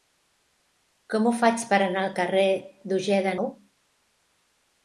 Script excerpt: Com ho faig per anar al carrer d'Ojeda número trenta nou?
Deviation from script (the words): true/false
true